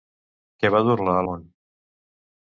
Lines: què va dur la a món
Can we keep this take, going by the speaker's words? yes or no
yes